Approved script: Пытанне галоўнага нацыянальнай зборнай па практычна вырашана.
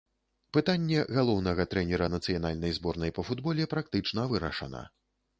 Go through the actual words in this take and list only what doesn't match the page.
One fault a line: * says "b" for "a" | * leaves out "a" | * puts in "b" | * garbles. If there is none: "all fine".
* puts in "трэнера"
* puts in "футболе"